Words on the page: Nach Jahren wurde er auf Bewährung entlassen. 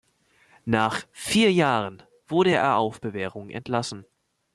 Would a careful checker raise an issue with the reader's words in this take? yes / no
yes